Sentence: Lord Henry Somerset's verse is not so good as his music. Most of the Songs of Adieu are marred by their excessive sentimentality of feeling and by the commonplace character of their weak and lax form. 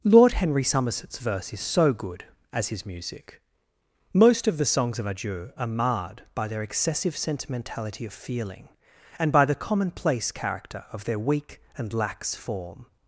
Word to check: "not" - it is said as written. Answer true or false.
false